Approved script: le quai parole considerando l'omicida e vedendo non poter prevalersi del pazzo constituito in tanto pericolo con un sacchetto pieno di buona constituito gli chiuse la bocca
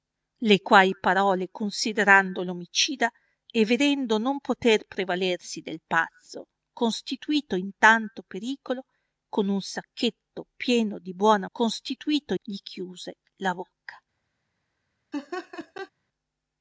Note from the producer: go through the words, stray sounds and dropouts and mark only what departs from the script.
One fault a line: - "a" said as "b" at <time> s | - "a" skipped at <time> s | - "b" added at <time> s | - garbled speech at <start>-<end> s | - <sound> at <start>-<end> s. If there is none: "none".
- laugh at 15.1-15.9 s